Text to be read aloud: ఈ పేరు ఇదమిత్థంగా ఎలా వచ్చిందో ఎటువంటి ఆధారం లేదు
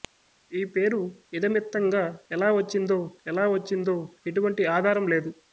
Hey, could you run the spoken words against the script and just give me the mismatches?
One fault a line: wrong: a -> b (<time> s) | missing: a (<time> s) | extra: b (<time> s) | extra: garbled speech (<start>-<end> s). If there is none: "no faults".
extra: ఎలా వచ్చిందో (3.3 s)